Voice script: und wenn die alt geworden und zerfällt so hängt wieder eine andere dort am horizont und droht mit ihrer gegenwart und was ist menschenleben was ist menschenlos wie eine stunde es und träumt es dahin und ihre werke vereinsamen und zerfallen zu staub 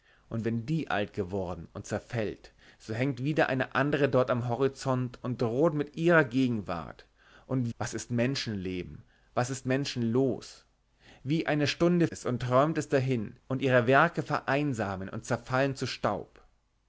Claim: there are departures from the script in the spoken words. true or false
false